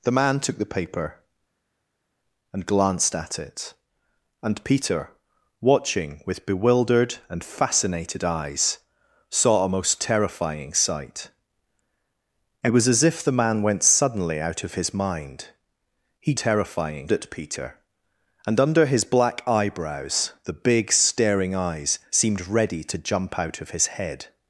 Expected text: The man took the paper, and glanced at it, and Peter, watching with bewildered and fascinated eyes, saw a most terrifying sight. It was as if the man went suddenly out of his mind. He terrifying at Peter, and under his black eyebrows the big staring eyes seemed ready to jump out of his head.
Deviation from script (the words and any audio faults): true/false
false